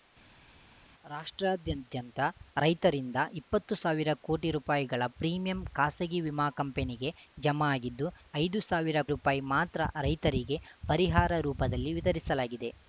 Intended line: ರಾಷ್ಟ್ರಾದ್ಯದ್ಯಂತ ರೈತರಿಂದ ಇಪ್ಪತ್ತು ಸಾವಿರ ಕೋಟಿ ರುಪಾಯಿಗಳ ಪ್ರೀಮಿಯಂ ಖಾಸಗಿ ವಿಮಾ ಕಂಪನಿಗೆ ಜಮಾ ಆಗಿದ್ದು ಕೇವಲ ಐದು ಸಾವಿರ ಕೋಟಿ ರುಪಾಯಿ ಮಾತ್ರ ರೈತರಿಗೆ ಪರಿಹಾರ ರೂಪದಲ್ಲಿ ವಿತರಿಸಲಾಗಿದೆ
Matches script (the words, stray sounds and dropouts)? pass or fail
fail